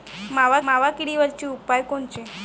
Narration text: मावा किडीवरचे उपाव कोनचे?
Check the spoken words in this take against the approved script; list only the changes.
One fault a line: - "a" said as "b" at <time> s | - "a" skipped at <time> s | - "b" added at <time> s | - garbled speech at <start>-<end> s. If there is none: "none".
- "मावा" added at 0.6 s